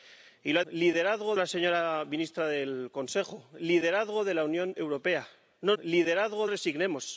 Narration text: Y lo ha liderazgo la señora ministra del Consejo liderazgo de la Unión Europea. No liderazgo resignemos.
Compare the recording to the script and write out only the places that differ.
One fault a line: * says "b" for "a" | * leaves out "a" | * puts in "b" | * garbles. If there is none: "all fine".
all fine